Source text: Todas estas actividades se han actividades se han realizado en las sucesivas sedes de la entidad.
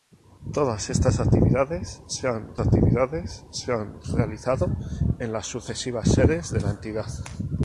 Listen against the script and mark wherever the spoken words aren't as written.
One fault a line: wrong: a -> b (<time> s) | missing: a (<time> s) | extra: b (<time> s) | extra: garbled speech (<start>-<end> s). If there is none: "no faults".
no faults